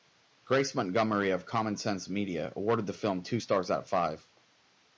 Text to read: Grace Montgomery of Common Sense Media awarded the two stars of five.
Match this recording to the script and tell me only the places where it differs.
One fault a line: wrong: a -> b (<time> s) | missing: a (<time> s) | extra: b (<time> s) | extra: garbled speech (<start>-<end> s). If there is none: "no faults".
extra: film (2.9 s)
extra: out (3.7 s)